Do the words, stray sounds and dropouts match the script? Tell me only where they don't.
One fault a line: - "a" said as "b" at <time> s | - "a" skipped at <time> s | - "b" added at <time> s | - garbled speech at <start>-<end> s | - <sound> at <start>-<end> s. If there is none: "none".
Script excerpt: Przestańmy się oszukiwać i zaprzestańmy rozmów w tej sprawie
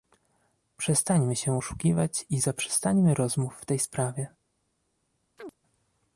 - chirp at 5.4-5.6 s